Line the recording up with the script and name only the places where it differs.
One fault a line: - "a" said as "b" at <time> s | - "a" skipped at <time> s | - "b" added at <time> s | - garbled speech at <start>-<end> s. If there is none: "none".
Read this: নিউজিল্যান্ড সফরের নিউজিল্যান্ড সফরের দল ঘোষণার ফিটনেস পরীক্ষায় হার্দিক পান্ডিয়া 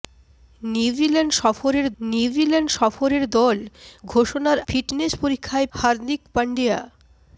none